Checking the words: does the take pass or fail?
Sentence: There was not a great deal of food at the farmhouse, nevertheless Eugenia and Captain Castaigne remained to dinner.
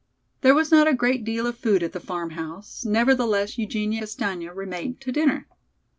fail